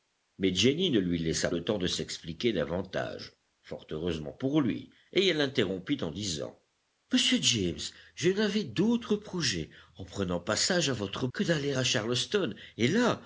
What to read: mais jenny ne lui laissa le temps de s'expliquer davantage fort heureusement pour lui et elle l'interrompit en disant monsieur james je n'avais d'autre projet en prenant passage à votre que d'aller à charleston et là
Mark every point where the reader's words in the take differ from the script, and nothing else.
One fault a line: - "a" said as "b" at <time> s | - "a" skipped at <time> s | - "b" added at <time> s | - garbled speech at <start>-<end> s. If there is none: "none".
none